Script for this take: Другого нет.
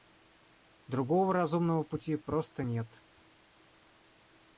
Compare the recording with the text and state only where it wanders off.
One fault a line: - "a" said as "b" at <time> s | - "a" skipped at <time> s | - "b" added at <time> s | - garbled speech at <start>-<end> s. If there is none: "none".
- "разумного пути просто" added at 1.3 s